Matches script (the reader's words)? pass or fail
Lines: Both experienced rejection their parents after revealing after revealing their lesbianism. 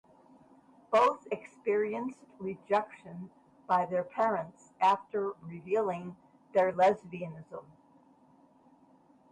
fail